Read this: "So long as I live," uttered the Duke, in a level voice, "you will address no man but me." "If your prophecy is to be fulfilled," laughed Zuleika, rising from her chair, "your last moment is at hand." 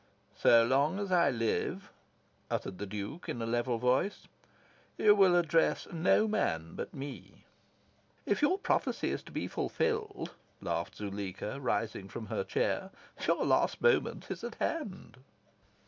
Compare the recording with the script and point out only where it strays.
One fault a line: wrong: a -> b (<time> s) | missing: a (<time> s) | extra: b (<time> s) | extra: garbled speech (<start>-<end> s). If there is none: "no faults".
no faults